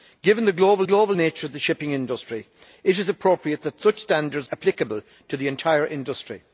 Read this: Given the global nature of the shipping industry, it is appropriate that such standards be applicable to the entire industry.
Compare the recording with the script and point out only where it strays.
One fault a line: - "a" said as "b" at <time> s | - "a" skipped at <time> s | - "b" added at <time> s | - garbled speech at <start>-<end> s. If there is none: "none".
- "global" added at 0.8 s
- "be" skipped at 4.5 s